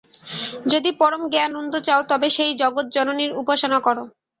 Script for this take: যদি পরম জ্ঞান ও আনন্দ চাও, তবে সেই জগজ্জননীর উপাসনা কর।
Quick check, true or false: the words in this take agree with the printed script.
false